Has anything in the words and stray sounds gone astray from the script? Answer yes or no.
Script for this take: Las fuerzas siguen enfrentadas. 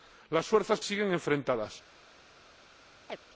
yes